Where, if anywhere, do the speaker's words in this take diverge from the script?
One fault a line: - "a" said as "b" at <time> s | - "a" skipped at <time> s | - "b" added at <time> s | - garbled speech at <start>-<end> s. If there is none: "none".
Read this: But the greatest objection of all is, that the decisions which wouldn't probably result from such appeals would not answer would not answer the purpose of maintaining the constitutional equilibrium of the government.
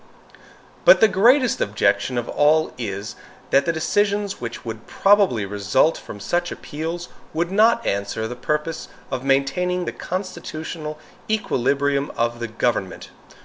- "wouldn't" said as "would" at 4.7 s
- "would not answer" skipped at 8.3 s